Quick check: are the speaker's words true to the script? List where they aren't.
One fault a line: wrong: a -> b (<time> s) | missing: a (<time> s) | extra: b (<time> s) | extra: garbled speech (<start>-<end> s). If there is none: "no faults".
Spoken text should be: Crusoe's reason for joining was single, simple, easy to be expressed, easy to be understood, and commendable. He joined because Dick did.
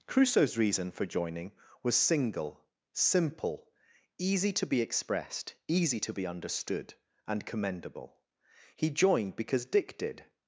no faults